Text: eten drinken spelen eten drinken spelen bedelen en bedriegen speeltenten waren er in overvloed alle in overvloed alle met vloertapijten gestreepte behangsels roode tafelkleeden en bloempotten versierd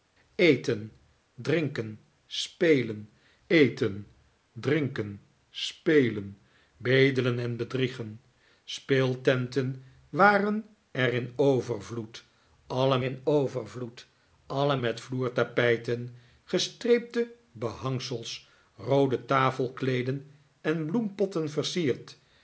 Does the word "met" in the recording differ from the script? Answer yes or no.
no